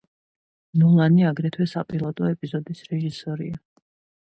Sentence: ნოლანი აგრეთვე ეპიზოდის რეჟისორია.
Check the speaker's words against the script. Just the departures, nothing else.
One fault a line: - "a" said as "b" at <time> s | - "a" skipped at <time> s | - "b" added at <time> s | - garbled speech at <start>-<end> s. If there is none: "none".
- "საპილოტო" added at 1.7 s